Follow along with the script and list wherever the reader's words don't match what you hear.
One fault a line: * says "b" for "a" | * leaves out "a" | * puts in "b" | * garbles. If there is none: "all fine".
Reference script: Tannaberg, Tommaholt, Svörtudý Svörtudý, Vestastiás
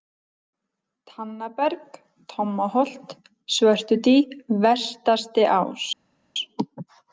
* leaves out "Svörtudý"